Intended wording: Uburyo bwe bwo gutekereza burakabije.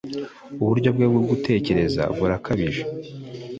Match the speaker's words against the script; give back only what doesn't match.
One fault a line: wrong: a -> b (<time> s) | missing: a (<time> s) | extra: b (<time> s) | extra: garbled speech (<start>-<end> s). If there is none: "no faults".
no faults